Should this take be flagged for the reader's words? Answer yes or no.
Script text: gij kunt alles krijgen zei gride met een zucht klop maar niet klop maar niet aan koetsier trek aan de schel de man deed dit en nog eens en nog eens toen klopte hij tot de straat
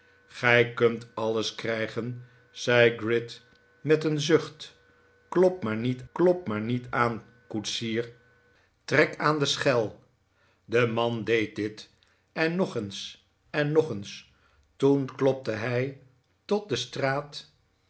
no